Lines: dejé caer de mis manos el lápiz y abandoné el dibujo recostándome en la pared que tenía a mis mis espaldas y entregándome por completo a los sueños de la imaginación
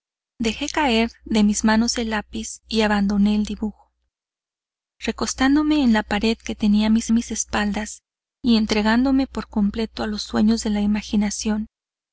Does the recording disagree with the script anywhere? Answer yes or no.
no